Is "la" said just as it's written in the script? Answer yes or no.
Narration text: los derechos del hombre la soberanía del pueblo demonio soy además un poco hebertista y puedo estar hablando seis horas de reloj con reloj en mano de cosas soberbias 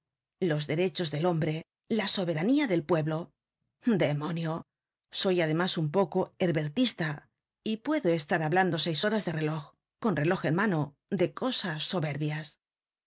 yes